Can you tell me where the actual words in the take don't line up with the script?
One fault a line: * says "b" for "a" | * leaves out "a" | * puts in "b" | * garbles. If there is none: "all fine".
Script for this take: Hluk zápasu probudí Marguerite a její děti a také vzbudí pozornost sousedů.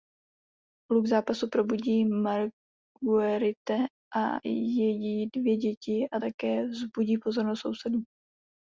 * puts in "dvě"